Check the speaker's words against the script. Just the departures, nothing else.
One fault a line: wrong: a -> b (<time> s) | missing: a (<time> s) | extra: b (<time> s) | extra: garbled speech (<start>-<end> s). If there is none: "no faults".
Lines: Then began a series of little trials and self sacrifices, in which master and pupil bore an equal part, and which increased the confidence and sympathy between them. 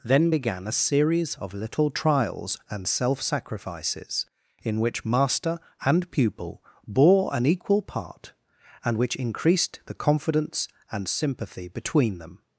no faults